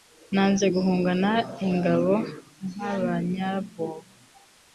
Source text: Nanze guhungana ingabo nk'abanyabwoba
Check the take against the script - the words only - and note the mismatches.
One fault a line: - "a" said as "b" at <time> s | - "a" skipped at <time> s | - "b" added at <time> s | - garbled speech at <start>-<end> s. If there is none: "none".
none